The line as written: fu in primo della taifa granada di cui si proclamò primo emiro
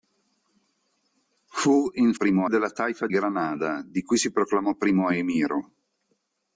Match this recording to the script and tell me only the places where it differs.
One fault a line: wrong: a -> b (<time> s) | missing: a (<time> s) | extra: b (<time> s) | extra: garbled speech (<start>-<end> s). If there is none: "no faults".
no faults